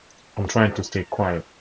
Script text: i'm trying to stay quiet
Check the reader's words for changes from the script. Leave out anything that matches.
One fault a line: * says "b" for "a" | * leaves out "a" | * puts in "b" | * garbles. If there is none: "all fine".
all fine